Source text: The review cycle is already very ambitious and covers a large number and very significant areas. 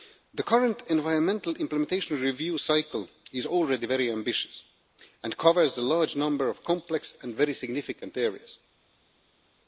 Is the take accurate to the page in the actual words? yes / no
no